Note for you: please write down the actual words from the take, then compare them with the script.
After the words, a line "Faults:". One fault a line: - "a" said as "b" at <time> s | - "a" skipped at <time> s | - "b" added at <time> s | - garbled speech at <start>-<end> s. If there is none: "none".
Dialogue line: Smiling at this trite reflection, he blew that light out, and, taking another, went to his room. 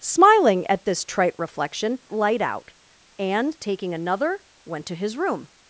Smiling at this trite reflection, light out, and, taking another, went to his room.
Faults:
- "he blew that" skipped at 2.0 s